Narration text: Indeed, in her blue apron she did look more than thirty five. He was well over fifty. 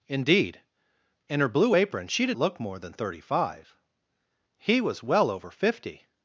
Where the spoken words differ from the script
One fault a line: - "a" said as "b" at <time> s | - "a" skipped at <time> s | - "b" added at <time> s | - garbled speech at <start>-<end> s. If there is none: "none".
none